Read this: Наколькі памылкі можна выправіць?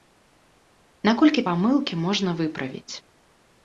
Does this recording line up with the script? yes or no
yes